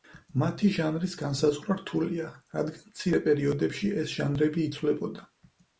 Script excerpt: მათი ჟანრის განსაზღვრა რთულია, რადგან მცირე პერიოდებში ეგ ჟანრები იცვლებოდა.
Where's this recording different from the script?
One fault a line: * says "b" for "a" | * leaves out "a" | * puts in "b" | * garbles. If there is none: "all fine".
* says "ეს" for "ეგ"